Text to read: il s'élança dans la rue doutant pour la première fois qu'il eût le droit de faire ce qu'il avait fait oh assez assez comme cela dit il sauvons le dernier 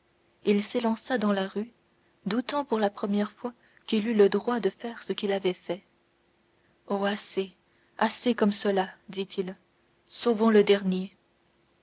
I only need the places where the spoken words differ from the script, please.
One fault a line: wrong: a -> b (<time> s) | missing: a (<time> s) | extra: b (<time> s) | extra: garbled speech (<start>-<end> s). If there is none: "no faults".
no faults